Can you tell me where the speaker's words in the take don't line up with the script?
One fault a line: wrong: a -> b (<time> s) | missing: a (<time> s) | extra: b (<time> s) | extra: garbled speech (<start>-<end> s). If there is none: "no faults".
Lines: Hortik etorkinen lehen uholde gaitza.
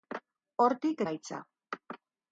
missing: etorkinen lehen uholde (1.0 s)